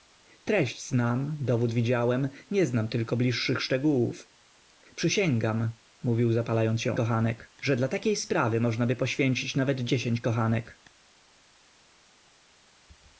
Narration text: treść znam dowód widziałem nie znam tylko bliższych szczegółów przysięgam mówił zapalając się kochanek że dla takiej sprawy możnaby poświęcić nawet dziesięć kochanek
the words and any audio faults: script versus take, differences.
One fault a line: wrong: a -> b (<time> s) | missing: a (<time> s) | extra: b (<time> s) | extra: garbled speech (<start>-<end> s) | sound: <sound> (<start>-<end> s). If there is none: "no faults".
no faults